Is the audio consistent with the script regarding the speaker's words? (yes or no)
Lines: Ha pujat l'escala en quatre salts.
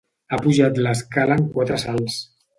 yes